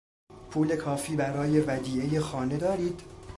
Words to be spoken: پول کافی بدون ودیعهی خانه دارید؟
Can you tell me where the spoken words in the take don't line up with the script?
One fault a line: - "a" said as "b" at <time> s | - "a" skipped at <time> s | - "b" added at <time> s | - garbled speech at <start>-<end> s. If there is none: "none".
- "بدون" said as "برای" at 1.1 s